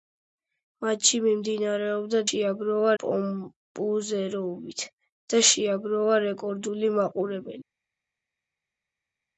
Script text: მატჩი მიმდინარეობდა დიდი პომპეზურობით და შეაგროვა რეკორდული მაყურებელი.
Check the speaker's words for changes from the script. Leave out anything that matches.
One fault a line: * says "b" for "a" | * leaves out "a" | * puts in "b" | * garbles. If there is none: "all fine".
* says "შეაგროვა" for "დიდი"